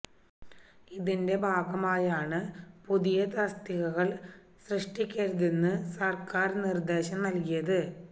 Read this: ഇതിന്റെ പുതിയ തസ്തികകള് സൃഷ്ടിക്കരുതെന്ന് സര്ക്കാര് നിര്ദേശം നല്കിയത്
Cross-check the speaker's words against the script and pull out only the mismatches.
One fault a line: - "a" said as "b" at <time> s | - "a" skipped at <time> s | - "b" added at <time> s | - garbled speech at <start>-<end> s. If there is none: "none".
- "ഭാഗമായാണ്" added at 1.4 s